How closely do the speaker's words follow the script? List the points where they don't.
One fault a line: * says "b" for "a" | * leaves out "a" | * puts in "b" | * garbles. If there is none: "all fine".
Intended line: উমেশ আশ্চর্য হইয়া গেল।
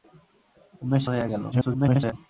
* leaves out "আশ্চর্য"
* garbles